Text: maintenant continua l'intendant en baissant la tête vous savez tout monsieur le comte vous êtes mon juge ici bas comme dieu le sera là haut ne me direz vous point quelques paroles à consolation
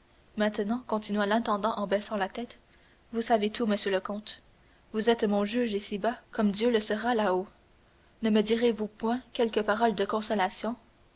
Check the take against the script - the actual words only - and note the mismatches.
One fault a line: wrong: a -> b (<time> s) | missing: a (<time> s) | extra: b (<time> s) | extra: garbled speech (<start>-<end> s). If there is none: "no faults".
wrong: à -> de (9.9 s)